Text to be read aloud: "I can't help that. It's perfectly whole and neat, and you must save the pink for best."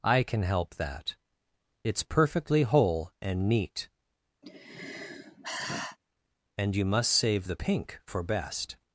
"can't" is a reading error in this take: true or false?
true